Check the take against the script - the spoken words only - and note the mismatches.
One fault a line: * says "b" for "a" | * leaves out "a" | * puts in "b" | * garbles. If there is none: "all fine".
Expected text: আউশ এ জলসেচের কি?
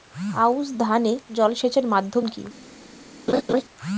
* puts in "ধান"
* puts in "মাধ্যম"